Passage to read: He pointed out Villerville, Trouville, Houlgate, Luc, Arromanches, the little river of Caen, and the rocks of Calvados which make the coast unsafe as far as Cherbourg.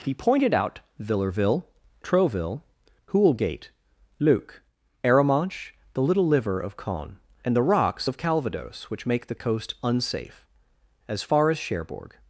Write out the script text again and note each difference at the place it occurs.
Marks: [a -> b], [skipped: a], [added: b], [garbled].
He pointed out Villerville, Trouville, Houlgate, Luc, Arromanches, the little [river -> liver] of Caen, and the rocks of Calvados which make the coast unsafe as far as Cherbourg.